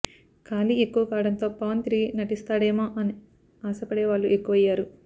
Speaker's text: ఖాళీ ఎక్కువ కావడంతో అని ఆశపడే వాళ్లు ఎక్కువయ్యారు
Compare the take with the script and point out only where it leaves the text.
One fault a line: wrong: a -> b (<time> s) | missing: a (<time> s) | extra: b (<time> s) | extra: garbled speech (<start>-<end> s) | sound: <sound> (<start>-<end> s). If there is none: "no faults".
extra: పవన్ తిరిగి నటిస్తాడేమో (1.6 s)